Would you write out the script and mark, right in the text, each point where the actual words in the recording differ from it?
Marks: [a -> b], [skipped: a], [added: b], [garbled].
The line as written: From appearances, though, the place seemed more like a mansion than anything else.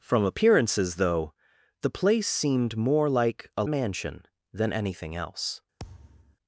From appearances, though, the place seemed more like a mansion than anything else.